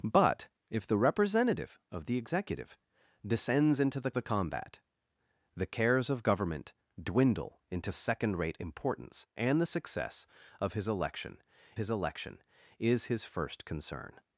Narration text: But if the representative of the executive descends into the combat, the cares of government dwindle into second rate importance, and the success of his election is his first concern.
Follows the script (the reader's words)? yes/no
no